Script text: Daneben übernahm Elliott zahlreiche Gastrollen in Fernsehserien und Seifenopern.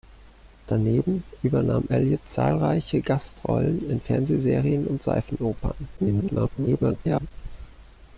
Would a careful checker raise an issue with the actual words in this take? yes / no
yes